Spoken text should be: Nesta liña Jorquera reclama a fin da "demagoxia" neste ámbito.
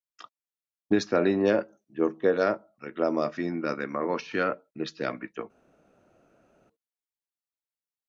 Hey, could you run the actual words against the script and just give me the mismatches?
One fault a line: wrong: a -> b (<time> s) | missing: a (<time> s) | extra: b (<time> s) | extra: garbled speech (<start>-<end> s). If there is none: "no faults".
no faults